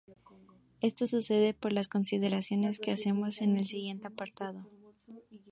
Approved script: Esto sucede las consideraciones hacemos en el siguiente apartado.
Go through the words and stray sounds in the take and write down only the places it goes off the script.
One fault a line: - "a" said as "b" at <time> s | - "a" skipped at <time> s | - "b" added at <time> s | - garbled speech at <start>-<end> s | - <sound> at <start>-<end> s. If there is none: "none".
- "por" added at 1.5 s
- "que" added at 2.8 s